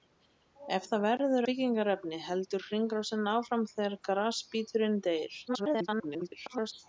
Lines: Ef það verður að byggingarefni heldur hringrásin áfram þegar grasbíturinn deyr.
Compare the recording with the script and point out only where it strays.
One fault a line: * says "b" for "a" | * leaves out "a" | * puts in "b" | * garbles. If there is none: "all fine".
* leaves out "að"
* garbles